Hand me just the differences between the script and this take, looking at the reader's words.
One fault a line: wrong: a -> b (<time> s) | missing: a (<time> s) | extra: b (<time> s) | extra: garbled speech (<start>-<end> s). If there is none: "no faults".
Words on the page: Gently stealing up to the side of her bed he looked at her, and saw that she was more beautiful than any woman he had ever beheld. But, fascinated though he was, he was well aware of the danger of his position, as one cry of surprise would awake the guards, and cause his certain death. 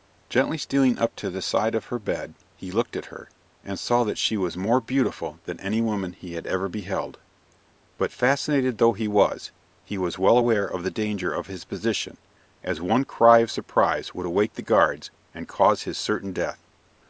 no faults